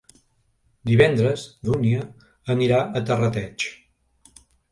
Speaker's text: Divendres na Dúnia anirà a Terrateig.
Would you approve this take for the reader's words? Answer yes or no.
no